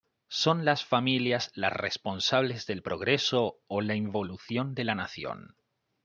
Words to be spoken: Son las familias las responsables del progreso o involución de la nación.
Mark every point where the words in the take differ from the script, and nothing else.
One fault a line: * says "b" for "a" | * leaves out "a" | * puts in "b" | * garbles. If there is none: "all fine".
* puts in "la"